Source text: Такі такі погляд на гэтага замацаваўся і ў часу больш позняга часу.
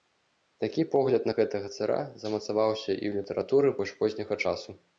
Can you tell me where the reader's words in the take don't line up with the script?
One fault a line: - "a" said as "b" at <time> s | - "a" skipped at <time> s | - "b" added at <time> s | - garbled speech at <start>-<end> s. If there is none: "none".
- "такі" skipped at 0.8 s
- "цара" added at 1.8 s
- "часу" said as "літаратуры" at 3.2 s